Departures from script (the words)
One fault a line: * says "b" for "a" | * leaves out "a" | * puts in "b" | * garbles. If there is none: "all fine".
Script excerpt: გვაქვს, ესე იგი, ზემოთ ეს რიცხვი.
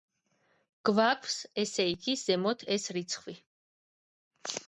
all fine